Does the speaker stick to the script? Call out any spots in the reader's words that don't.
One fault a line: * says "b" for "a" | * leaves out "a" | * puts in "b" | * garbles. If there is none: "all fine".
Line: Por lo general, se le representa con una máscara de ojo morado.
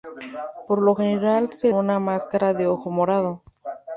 * leaves out "le representa con"